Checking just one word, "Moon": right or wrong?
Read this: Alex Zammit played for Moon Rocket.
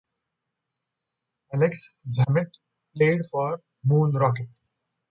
right